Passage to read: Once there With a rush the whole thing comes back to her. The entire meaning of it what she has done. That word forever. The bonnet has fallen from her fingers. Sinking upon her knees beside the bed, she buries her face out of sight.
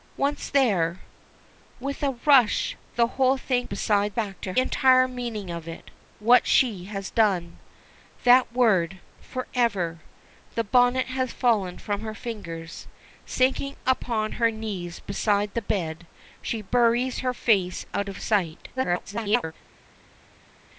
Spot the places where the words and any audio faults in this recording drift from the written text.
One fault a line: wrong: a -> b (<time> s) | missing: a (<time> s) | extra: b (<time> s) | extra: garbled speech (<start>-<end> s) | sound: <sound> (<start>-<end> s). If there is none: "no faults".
wrong: comes -> beside (3.6 s)
missing: her The (4.5 s)
extra: garbled speech (18.8-19.5 s)